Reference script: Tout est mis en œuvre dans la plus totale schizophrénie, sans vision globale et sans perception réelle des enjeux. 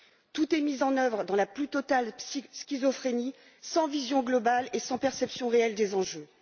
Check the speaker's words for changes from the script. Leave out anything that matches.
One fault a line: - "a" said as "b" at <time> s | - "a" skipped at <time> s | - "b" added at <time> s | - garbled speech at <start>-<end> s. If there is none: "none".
none